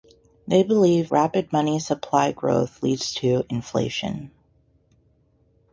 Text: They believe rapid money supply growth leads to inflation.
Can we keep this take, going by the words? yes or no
yes